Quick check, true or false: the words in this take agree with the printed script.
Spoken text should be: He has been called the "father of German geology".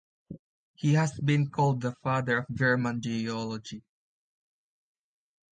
true